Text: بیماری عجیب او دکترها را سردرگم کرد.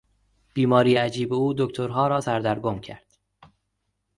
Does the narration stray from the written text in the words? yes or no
no